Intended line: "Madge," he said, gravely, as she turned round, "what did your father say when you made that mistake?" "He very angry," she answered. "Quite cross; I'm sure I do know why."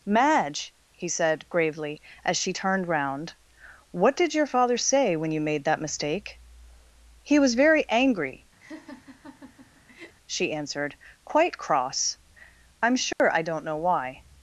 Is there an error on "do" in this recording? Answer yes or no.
yes